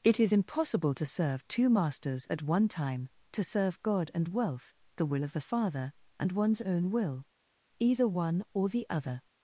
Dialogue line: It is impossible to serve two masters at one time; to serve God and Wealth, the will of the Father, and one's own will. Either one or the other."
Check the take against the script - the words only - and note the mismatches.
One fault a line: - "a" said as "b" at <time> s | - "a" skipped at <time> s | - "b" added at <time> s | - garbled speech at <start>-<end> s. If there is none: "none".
none